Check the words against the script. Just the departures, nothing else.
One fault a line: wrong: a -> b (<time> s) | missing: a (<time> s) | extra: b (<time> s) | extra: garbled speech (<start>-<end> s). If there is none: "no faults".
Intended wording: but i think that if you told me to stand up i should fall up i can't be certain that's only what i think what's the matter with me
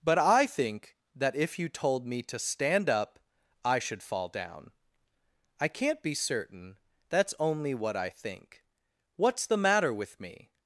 wrong: up -> down (4.3 s)